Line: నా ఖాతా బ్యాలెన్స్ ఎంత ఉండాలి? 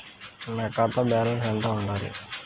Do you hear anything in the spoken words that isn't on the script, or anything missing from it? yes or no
no